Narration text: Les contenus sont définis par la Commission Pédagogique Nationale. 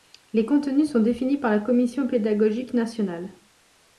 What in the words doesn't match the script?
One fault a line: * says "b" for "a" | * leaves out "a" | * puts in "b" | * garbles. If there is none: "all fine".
all fine